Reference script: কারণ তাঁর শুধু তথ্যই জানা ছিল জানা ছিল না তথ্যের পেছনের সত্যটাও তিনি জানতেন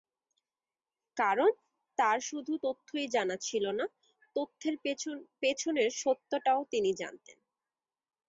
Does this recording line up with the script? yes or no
no